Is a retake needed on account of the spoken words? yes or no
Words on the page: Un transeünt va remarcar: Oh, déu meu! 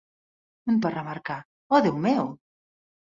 yes